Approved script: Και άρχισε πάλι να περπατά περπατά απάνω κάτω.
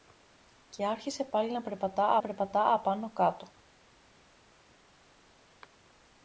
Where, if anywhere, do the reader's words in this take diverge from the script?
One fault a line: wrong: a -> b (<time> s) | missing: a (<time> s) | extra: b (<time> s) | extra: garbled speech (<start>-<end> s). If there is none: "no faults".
no faults